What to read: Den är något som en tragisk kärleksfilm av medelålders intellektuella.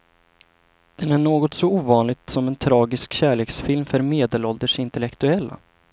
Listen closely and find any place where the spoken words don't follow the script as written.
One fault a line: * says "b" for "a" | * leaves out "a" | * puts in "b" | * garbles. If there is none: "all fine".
* puts in "så ovanligt"
* says "för" for "av"